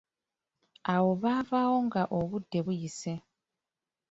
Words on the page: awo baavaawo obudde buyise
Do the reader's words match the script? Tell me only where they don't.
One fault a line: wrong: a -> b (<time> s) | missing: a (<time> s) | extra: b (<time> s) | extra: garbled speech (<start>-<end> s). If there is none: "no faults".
extra: nga (1.9 s)